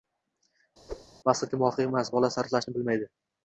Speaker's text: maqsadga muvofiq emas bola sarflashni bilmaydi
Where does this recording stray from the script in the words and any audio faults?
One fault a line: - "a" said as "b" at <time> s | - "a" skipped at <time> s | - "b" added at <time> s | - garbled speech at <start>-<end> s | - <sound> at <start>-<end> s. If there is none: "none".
- whoosh at 0.9-1.1 s